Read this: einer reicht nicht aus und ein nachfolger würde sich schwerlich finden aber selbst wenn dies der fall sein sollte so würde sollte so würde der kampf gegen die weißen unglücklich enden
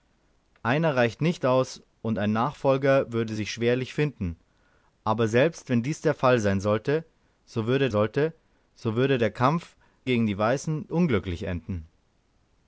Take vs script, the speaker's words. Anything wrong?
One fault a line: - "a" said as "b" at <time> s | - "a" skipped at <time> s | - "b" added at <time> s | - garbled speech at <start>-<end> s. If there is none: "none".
none